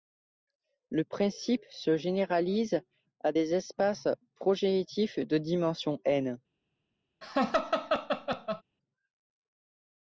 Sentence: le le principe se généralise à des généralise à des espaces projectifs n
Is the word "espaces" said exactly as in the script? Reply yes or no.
no